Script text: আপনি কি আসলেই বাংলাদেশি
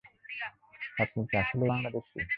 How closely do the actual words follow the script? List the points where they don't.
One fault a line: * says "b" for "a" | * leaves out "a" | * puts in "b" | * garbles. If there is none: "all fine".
all fine